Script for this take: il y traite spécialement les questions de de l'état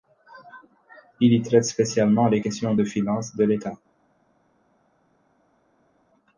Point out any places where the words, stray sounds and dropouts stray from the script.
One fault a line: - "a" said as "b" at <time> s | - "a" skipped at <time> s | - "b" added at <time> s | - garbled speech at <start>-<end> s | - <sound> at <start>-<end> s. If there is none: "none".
- "finances" added at 2.8 s